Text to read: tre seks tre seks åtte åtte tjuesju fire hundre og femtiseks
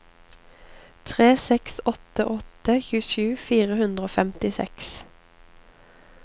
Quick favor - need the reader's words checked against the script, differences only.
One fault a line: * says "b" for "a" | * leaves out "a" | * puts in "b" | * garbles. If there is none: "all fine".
* leaves out "tre seks"